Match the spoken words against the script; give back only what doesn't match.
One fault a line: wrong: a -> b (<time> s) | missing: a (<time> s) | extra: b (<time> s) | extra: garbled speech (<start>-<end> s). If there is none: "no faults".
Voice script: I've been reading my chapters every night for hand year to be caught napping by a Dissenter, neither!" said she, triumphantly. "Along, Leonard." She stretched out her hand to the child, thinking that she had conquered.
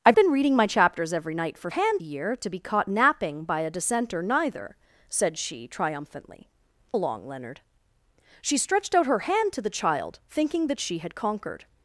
no faults